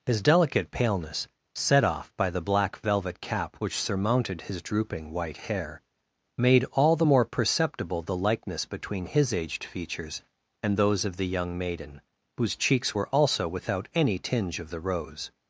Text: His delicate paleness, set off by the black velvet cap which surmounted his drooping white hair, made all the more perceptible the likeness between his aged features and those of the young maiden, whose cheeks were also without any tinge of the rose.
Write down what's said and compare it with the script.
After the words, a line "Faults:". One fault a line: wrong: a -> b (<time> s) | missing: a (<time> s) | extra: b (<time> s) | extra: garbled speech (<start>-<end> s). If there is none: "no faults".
His delicate paleness, set off by the black velvet cap which surmounted his drooping white hair, made all the more perceptible the likeness between his aged features and those of the young maiden, whose cheeks were also without any tinge of the rose.
Faults:
no faults